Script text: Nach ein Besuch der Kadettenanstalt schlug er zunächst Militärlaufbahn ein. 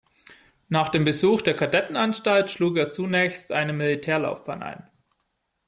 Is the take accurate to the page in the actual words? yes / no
no